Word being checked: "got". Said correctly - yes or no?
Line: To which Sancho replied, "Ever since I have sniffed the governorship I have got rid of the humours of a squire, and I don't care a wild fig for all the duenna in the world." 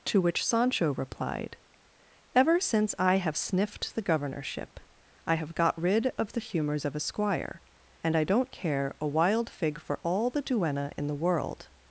yes